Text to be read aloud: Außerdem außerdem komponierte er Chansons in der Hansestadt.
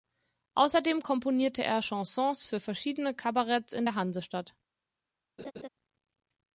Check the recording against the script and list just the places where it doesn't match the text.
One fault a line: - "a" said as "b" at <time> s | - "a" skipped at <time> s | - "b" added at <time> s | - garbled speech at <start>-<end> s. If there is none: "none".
- "außerdem" skipped at 1.0 s
- "für verschiedene Kabaretts" added at 2.4 s